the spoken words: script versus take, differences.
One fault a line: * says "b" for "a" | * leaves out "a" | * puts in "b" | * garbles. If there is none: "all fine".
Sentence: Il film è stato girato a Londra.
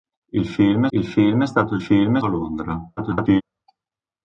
* puts in "il film"
* says "film" for "girato"
* garbles